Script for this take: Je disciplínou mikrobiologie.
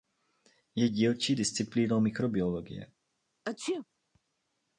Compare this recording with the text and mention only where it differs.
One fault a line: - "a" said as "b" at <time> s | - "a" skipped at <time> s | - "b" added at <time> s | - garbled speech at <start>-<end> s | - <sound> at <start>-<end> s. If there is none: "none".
- "dílčí" added at 0.9 s
- sneeze at 3.4-3.9 s